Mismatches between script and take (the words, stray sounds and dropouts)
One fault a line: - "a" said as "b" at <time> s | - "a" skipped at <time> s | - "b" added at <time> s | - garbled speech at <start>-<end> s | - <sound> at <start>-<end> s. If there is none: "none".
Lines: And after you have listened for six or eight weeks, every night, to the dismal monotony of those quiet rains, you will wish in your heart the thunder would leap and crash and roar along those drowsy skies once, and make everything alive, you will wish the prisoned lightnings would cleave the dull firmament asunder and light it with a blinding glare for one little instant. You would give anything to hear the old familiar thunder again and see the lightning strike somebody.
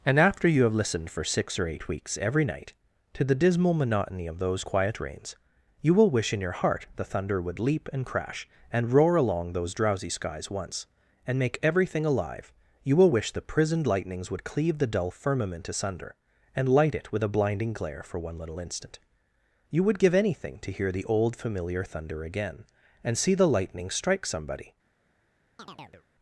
- chirp at 25.6-26.1 s